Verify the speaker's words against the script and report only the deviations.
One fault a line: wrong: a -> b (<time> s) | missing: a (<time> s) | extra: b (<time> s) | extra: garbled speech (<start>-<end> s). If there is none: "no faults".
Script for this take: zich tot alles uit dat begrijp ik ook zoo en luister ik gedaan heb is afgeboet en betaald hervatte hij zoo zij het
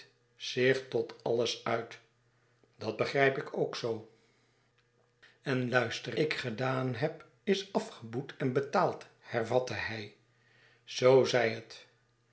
no faults